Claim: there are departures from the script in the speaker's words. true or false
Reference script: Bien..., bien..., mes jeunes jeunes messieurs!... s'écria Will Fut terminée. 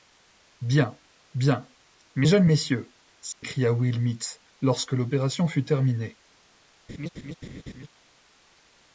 true